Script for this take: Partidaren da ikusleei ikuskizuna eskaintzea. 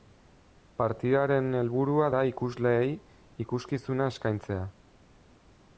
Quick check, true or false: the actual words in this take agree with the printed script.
false